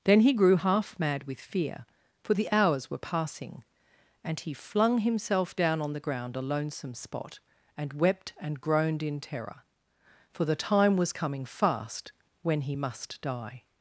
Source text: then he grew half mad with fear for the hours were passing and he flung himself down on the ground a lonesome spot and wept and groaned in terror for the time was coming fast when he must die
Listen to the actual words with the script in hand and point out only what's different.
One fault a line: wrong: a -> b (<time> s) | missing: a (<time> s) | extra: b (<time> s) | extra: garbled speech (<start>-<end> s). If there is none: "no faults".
no faults